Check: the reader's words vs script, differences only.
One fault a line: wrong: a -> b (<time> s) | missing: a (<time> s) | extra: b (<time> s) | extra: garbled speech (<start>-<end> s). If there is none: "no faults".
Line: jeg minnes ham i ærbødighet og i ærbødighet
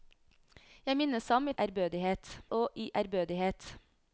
no faults